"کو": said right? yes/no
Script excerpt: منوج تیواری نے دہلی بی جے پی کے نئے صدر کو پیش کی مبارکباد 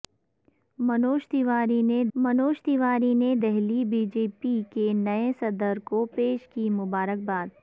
yes